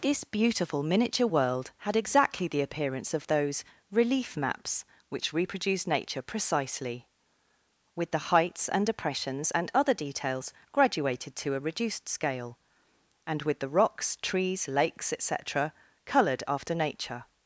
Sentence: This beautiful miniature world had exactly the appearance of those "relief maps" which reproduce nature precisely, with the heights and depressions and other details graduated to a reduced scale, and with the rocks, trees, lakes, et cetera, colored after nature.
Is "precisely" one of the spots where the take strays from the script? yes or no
no